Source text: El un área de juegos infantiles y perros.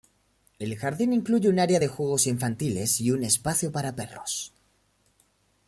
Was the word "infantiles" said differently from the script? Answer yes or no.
no